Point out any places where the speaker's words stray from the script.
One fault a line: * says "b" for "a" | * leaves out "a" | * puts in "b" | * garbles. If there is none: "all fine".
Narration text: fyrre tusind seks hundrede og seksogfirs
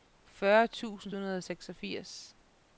* leaves out "seks"